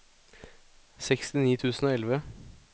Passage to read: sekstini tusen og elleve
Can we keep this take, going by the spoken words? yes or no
yes